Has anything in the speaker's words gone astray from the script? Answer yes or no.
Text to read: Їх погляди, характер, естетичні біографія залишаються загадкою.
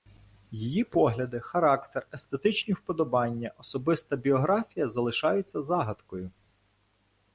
yes